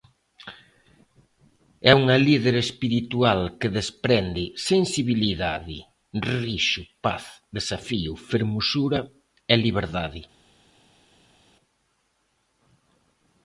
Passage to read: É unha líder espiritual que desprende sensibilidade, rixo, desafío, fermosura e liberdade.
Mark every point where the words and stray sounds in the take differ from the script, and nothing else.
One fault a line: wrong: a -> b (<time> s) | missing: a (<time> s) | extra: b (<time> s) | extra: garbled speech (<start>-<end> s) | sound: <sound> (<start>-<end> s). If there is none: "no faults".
extra: paz (7.0 s)